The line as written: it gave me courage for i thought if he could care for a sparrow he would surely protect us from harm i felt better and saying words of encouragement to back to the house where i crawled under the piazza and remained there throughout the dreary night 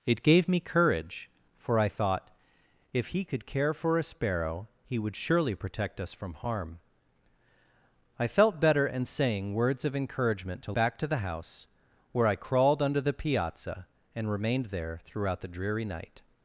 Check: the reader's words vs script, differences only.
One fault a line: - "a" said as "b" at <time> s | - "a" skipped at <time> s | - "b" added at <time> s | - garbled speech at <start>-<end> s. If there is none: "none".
none